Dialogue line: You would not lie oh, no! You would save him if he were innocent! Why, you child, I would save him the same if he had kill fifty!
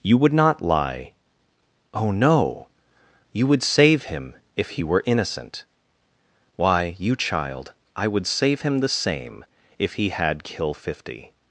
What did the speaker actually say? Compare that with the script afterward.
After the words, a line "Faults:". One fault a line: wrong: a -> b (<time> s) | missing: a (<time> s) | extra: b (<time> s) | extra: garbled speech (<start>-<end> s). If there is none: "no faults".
You would not lie oh, no! You would save him if he were innocent! Why, you child, I would save him the same if he had kill fifty!
Faults:
no faults